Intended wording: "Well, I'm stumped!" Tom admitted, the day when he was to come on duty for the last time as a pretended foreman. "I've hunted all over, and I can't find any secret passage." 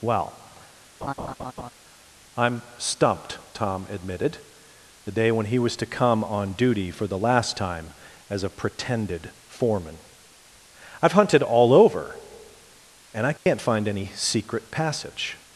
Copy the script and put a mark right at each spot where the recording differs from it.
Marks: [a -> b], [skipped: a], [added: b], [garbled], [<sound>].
"Well, [laugh] I'm stumped!" Tom admitted, the day when he was to come on duty for the last time as a pretended foreman. "I've hunted all over, and I can't [dropout] find any secret passage."